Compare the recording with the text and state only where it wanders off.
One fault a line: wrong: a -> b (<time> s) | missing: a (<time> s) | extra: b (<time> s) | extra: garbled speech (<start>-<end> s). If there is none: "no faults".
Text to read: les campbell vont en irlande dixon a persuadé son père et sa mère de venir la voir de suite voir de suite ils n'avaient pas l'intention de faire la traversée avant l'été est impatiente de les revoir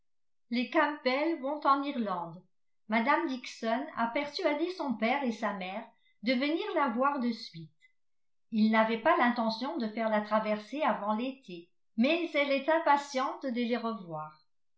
extra: mme (2.9 s)
missing: voir de suite (7.7 s)
extra: mais elle (12.0 s)